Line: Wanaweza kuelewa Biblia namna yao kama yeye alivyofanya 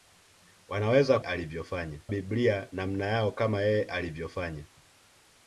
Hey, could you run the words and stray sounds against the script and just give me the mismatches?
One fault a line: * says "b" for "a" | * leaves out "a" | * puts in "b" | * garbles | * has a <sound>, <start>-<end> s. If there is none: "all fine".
* says "alivyofanya" for "kuelewa"